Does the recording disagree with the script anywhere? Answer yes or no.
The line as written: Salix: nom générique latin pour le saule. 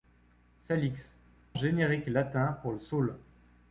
yes